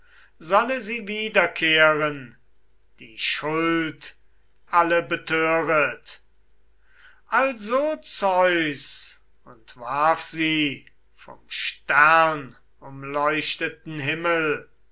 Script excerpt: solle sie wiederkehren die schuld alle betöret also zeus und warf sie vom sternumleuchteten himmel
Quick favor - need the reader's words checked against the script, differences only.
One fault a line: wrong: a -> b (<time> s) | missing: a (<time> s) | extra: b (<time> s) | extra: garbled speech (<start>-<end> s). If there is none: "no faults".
no faults